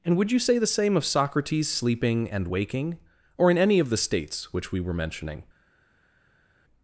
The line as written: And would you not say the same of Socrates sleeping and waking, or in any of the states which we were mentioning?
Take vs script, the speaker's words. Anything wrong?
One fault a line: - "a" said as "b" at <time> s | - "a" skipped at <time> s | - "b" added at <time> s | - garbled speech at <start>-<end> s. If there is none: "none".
- "not" skipped at 0.4 s